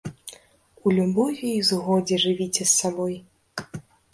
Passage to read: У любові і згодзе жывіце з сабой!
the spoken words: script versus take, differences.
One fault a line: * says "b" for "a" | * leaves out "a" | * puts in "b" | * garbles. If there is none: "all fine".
all fine